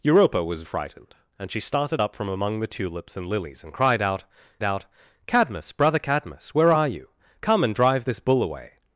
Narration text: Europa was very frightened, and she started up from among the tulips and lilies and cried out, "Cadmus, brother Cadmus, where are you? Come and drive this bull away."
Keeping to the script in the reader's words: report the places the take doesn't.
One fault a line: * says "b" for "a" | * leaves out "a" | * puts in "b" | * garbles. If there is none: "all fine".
* leaves out "very"
* puts in "out"